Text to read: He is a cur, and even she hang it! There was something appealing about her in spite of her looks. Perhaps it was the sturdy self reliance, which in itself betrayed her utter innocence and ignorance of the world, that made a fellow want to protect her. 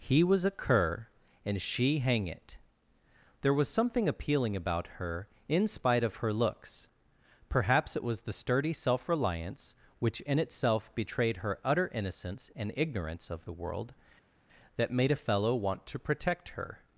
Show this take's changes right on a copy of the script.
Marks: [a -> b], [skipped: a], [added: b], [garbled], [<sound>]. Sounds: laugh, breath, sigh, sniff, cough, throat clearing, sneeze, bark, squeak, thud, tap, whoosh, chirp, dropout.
He [is -> was] a cur, and [skipped: even] she hang it! There was something appealing about her in spite of her looks. Perhaps it was the sturdy self reliance, which in itself betrayed her utter innocence and ignorance of the world, that made a fellow want to protect her.